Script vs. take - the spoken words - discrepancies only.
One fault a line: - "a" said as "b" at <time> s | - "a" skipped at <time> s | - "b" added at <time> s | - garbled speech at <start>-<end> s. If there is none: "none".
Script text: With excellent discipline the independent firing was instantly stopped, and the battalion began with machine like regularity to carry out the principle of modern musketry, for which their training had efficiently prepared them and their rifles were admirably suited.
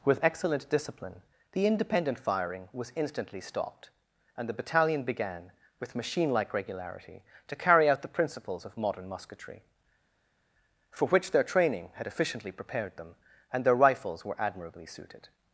- "principle" said as "principles" at 8.1 s